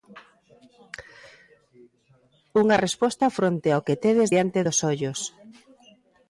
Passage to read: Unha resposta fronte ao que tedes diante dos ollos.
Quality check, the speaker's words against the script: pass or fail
pass